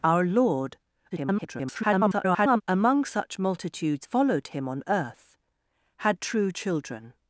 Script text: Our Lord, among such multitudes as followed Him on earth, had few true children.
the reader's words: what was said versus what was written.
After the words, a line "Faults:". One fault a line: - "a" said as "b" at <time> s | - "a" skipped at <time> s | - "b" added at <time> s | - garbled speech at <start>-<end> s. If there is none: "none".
Our Lord, [garbled] among such multitudes followed Him on earth, had true children.
Faults:
- garbled speech at 1.1-2.6 s
- "as" skipped at 4.1 s
- "few" skipped at 6.2 s